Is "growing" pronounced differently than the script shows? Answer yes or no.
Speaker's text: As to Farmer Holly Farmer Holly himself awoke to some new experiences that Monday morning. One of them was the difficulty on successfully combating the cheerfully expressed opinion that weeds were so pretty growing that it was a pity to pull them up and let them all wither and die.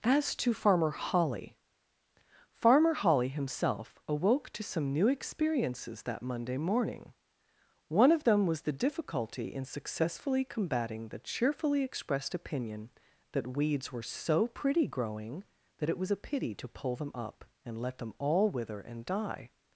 no